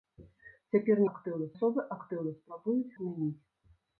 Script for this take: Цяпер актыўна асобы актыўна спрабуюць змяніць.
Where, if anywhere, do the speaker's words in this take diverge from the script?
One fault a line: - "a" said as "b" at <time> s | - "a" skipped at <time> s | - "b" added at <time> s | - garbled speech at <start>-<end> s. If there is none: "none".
none